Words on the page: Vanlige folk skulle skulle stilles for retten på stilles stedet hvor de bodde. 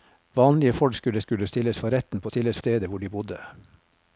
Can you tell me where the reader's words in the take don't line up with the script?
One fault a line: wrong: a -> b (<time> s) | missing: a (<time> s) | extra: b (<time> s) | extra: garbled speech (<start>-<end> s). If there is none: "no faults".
no faults